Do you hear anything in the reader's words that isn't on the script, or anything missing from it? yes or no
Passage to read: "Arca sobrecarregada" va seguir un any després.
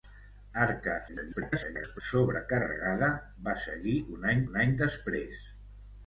yes